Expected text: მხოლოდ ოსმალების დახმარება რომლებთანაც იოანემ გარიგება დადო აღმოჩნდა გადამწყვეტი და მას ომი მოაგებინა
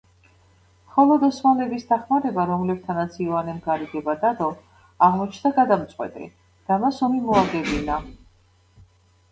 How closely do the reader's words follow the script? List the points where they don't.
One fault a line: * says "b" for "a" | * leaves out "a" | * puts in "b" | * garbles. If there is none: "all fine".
all fine